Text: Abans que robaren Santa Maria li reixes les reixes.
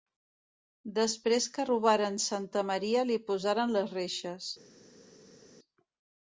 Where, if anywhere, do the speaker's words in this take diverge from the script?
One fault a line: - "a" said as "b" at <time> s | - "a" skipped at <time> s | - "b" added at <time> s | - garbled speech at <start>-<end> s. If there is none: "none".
- "Abans" said as "Després" at 1.0 s
- "reixes" said as "posaren" at 3.3 s